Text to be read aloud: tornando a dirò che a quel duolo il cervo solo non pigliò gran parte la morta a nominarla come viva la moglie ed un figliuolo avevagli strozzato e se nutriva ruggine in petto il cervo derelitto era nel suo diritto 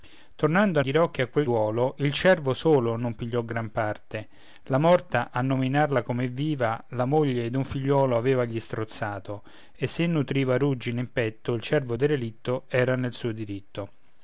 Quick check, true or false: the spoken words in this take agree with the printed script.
true